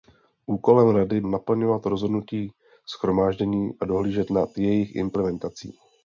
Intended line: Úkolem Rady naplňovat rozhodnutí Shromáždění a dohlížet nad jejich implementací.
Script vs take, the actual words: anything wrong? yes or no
no